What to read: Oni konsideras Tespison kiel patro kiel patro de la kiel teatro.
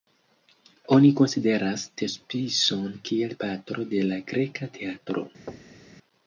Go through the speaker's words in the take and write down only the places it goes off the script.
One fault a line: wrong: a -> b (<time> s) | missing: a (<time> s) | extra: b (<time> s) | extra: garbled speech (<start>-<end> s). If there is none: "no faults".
missing: kiel patro (3.9 s)
wrong: kiel -> greka (4.4 s)